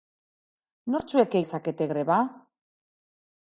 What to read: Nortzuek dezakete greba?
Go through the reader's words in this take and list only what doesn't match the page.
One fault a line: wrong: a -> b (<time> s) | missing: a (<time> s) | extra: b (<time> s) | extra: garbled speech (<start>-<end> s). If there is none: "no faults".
no faults